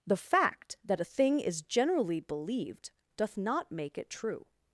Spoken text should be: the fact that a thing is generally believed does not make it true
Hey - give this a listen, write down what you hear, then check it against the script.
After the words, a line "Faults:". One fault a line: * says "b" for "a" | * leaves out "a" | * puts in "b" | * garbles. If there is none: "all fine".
the fact that a thing is generally believed doth not make it true
Faults:
* says "doth" for "does"